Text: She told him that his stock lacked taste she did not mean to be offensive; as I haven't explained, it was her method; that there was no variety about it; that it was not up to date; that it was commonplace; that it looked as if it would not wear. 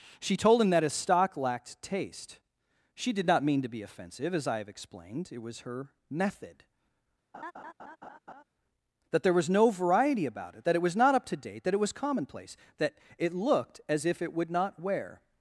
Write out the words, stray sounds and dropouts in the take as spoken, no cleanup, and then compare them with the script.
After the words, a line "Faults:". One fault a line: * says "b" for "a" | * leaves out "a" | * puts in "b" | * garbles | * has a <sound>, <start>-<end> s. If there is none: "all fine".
She told him that his stock lacked taste she did not mean to be offensive; as I have explained, it was her method; that there was no variety about it; that it was not up to date; that it was commonplace; that it looked as if it would not wear.
Faults:
* says "have" for "haven't"
* has a laugh, 7.3-8.4 s